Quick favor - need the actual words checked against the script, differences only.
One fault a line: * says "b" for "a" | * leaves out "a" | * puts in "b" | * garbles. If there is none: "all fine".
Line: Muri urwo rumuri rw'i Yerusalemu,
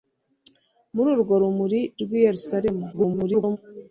* garbles